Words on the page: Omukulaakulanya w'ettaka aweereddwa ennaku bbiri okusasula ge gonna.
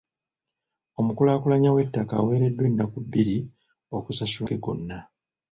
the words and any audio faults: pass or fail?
pass